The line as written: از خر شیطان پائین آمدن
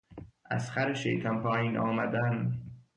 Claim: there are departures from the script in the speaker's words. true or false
false